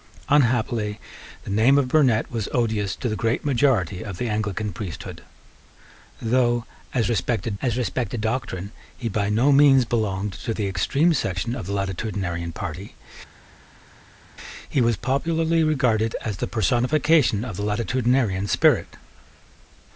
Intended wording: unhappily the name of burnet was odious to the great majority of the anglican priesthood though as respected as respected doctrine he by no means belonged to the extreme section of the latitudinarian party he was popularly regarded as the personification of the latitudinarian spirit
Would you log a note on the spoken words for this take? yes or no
no